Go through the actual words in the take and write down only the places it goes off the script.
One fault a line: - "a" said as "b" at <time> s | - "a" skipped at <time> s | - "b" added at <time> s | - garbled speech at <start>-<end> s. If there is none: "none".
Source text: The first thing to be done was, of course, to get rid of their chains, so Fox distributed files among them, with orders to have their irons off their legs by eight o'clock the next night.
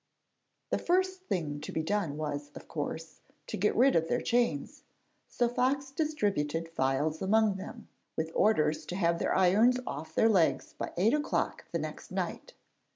none